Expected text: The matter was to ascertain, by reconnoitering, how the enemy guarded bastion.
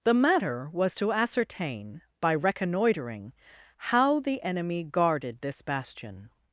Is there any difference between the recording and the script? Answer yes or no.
yes